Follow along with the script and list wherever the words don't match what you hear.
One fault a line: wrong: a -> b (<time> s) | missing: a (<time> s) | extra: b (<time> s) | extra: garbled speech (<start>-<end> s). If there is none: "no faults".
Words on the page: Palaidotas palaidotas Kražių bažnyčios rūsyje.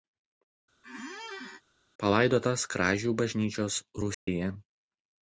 missing: palaidotas (2.6 s)